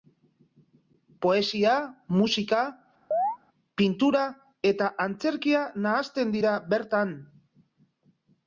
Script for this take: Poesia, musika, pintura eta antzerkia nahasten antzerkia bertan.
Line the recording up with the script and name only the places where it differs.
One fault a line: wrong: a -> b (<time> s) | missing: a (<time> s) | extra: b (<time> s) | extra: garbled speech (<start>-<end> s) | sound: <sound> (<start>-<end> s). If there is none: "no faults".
sound: chirp (3.1-3.4 s)
wrong: antzerkia -> dira (6.4 s)